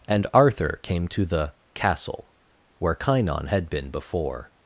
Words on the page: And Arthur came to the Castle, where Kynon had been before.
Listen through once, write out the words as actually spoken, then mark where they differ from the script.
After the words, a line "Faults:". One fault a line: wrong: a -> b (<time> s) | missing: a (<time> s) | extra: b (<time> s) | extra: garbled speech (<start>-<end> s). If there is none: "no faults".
And Arthur came to the Castle, where Kynon had been before.
Faults:
no faults